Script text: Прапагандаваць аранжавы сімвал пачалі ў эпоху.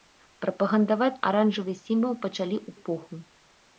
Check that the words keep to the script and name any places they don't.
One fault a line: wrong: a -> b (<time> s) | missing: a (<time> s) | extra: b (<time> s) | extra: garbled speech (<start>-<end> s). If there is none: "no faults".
no faults